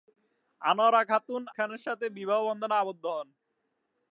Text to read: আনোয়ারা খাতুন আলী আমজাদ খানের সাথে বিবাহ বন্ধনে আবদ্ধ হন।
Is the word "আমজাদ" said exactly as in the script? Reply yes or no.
no